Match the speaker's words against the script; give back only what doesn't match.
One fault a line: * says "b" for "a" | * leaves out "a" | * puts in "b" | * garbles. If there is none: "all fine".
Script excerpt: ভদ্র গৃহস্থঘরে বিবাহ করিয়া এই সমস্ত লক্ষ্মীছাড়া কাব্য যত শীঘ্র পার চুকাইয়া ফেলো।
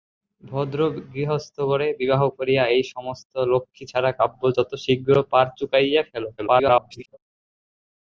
* garbles